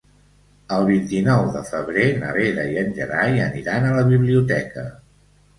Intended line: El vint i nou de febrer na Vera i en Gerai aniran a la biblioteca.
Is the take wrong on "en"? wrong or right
right